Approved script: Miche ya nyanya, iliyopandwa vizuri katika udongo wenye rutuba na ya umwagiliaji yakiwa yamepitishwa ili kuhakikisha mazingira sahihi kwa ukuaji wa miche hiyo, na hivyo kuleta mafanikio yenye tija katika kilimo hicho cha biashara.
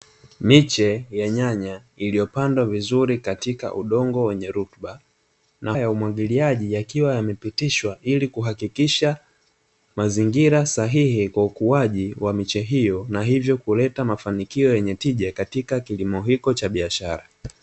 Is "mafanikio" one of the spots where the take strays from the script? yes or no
no